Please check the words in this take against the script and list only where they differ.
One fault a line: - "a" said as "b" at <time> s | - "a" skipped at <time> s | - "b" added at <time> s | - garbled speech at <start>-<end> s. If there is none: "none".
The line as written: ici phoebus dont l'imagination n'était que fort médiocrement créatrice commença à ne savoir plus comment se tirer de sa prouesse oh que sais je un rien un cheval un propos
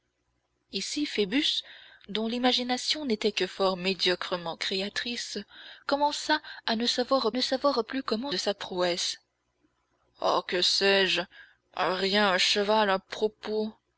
- "ne savoir" added at 7.3 s
- "se tirer" skipped at 8.3 s